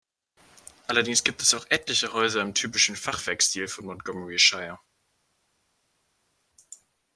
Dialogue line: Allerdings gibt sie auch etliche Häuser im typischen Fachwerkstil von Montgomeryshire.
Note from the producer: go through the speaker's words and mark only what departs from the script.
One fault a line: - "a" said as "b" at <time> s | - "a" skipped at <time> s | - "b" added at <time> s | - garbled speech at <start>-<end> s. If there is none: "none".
- "sie" said as "es" at 1.4 s